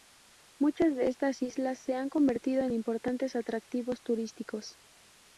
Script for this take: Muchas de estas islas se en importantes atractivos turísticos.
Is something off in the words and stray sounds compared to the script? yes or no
yes